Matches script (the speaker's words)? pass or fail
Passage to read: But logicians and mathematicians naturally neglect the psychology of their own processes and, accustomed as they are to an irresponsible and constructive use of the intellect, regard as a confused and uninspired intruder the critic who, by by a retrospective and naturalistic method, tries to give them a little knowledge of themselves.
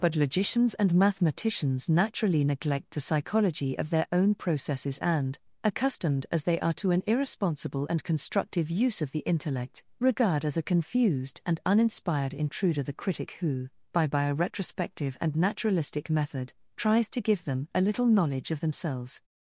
pass